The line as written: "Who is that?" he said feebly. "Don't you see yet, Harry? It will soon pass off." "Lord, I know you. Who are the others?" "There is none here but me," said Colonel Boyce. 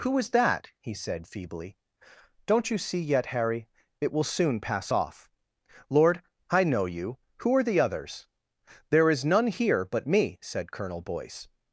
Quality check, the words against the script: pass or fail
pass